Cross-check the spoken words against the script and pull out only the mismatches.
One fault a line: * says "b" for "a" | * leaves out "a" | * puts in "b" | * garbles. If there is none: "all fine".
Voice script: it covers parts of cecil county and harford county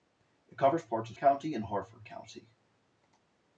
* leaves out "cecil"